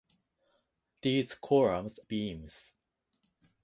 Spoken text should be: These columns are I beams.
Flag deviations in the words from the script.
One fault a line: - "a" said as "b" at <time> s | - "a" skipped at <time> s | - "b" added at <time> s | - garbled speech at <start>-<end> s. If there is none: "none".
- "are I" skipped at 2.0 s